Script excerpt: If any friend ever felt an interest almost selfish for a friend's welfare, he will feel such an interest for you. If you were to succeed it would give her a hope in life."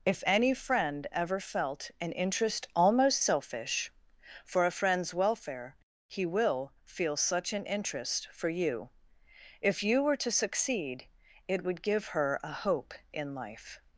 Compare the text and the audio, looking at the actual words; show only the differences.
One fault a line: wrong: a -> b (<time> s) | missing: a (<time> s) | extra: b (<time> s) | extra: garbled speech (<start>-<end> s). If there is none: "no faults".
no faults